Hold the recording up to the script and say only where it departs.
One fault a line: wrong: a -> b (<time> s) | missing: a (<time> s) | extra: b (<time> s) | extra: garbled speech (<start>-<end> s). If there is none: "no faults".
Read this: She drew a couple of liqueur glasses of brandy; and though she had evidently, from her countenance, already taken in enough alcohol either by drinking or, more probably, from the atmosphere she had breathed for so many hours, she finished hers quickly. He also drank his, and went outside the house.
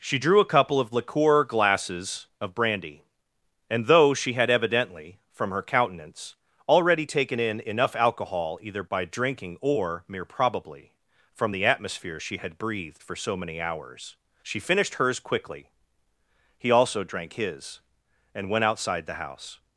wrong: more -> mere (10.1 s)